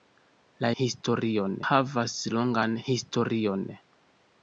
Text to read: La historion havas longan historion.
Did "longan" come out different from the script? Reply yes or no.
no